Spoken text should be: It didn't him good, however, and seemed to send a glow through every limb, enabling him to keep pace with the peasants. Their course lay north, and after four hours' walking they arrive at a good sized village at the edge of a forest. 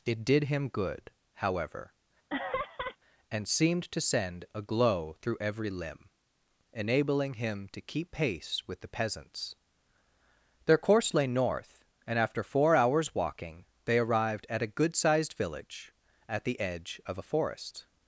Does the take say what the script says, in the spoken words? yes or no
no